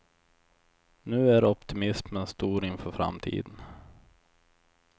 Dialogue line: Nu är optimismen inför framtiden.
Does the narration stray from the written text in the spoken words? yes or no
yes